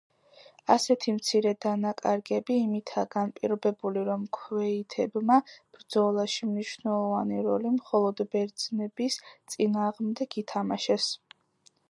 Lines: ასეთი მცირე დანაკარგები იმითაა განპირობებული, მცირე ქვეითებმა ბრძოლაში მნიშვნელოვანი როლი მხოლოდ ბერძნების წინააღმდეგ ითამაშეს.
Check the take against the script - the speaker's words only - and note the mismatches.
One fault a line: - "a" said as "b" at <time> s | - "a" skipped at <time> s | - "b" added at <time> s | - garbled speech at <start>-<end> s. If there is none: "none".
- "მცირე" said as "რომ" at 4.1 s